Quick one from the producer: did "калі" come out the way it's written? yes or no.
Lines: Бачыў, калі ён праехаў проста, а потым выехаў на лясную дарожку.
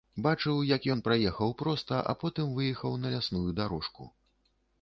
no